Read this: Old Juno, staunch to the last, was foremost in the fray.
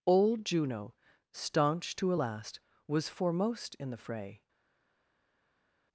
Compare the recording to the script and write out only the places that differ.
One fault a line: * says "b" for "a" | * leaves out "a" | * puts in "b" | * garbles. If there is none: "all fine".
* says "a" for "the"